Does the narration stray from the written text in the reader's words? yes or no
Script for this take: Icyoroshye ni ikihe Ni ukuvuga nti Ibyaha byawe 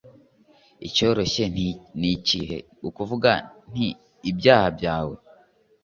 yes